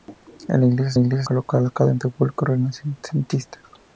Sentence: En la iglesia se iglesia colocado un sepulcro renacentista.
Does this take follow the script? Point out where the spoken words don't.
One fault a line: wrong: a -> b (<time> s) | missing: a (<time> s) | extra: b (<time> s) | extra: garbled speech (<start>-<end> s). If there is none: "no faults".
no faults